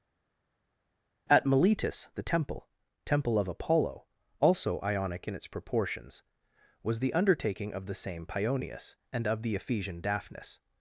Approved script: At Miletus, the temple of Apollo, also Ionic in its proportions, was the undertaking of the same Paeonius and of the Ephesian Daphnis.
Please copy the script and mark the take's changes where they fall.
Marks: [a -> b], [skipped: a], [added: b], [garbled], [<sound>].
At Miletus, the temple [added: temple] of Apollo, also Ionic in its proportions, was the undertaking of the same Paeonius and of the Ephesian Daphnis.